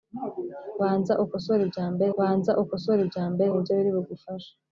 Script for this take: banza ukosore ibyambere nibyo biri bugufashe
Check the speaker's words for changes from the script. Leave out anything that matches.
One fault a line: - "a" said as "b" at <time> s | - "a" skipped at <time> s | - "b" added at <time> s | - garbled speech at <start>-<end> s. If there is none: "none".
- "banza ukosore ibyambere" added at 2.2 s